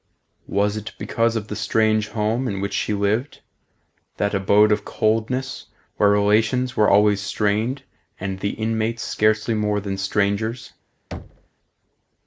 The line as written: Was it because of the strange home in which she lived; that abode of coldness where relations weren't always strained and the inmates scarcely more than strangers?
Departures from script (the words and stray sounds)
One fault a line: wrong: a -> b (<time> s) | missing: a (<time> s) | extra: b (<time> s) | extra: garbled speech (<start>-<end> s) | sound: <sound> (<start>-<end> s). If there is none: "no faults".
wrong: weren't -> were (6.7 s)
sound: thud (11.1-11.5 s)